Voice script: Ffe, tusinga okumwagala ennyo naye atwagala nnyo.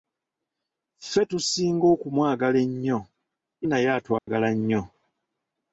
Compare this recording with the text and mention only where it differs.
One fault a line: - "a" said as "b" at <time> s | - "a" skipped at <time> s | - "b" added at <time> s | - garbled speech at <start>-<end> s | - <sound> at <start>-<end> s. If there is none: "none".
- dropout at 4.2-4.3 s